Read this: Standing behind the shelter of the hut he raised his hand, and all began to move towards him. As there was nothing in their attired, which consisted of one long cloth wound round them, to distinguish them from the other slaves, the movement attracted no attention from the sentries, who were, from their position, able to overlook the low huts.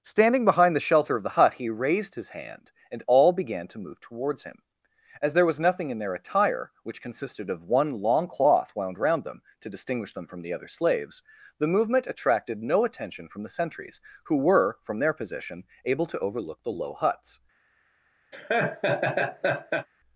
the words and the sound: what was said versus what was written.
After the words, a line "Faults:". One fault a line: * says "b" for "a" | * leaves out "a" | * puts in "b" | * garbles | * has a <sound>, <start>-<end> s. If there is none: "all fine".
Standing behind the shelter of the hut he raised his hand, and all began to move towards him. As there was nothing in their attire, which consisted of one long cloth wound round them, to distinguish them from the other slaves, the movement attracted no attention from the sentries, who were, from their position, able to overlook the low huts.
Faults:
* says "attire" for "attired"
* has a laugh, 18.3-19.9 s